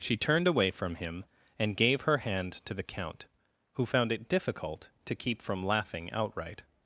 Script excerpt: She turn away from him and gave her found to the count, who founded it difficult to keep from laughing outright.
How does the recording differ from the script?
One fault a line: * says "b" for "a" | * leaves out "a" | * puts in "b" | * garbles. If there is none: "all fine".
* says "turned" for "turn"
* says "hand" for "found"
* says "found" for "founded"